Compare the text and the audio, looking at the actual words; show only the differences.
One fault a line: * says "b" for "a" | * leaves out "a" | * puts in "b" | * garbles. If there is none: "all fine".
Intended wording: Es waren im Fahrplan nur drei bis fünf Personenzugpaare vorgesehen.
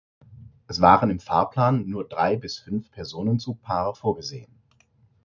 all fine